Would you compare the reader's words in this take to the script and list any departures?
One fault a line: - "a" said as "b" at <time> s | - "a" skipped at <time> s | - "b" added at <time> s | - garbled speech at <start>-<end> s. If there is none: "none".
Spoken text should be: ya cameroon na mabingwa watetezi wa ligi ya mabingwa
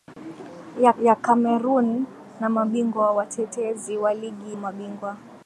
- "ya" added at 1.0 s
- "ya" skipped at 4.6 s